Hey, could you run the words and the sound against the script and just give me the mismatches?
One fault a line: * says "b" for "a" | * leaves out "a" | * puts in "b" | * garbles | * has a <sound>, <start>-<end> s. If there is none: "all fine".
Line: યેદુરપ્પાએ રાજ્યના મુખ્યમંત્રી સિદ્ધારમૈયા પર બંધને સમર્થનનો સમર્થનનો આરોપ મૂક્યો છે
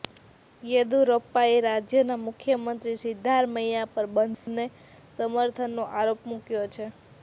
* has a dropout, 4.3-4.5 s
* leaves out "સમર્થનનો"